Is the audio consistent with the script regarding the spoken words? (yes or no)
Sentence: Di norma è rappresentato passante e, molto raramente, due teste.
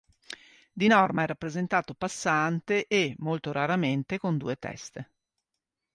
no